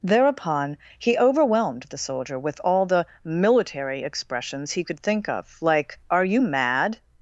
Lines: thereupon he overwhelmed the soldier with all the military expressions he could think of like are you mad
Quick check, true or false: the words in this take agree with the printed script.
true